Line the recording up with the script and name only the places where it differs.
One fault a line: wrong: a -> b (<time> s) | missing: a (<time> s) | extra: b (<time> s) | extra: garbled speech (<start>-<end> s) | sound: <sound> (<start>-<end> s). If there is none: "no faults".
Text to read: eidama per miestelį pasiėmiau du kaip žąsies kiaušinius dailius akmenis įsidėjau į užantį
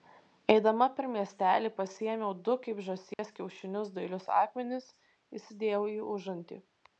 sound: dropout (3.1-3.2 s)